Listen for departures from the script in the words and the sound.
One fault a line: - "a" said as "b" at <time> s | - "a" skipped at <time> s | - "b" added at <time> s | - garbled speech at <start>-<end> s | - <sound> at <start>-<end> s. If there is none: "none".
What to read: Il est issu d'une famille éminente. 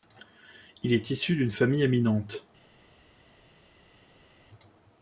none